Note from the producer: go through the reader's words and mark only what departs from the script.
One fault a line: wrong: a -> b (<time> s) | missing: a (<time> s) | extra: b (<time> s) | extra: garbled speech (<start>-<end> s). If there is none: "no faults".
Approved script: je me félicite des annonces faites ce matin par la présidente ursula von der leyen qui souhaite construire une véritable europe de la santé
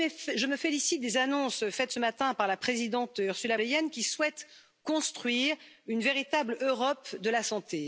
missing: von der (3.6 s)